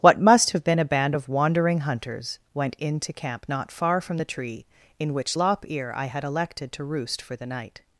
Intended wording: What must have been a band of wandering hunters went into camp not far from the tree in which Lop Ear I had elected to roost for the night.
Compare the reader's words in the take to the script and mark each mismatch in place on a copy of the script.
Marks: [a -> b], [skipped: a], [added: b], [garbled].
What must have been a band of wandering hunters went into camp not far from the tree in which Lop Ear I had elected to roost for the night.